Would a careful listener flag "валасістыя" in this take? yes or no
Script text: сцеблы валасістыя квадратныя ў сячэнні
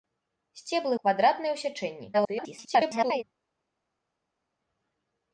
yes